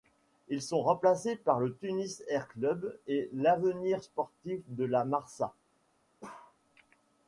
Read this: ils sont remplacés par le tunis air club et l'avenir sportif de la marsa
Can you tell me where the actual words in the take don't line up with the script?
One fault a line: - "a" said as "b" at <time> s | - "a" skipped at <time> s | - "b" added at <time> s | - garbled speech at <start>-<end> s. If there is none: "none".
none